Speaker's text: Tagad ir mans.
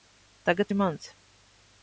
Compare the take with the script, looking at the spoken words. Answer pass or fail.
pass